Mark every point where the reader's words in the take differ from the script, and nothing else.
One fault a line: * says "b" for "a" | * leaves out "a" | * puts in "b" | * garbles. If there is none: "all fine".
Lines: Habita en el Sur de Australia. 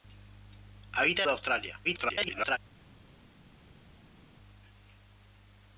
* leaves out "el Sur"
* garbles